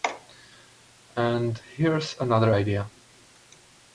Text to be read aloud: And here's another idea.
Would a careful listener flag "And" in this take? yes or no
no